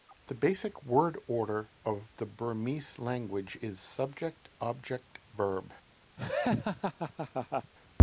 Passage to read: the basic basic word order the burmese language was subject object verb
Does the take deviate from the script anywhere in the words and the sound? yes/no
yes